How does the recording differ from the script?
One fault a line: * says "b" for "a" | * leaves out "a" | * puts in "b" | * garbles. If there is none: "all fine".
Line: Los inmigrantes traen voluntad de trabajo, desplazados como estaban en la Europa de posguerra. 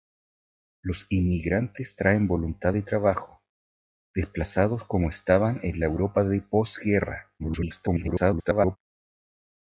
* garbles